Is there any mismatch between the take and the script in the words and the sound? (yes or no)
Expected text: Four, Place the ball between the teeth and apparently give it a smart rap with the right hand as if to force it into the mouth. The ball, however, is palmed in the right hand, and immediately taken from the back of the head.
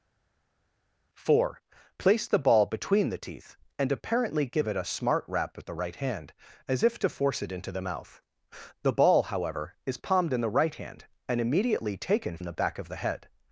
yes